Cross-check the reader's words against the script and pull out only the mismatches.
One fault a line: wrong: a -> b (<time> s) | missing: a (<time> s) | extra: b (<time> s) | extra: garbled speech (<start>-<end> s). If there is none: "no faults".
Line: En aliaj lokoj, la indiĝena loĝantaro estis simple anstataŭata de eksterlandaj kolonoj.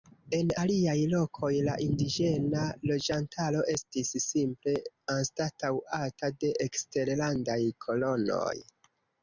no faults